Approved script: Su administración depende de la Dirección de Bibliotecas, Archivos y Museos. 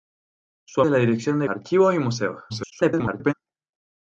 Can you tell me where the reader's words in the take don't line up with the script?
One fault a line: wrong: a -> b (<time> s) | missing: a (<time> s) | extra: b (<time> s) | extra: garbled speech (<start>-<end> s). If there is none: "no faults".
missing: administración depende (0.8 s)
missing: Bibliotecas (1.5 s)
extra: garbled speech (2.5-3.3 s)